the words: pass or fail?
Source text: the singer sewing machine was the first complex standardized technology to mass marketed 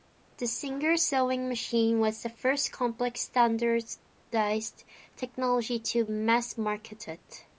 pass